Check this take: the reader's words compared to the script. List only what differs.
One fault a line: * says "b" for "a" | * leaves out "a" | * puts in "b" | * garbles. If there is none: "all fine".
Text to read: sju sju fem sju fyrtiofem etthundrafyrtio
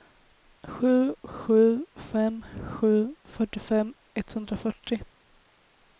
all fine